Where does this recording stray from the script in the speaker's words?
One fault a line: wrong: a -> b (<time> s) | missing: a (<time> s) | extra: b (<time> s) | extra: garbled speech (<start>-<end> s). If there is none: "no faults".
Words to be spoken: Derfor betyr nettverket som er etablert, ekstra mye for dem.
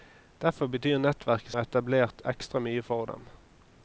missing: som (1.5 s)